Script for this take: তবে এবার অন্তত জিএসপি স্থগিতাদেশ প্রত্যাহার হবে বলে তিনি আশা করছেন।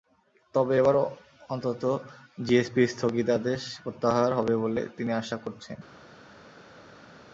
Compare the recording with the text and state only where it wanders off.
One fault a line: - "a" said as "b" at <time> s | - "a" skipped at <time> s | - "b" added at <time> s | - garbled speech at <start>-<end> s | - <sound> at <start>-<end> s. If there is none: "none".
none